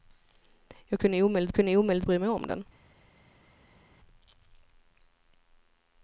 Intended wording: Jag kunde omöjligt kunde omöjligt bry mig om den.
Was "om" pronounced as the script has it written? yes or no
yes